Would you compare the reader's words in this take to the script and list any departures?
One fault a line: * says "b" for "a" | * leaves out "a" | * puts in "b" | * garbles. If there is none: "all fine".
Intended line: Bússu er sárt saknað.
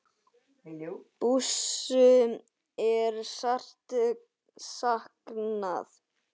all fine